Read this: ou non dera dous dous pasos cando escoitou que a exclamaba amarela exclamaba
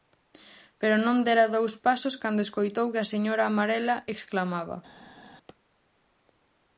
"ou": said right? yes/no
no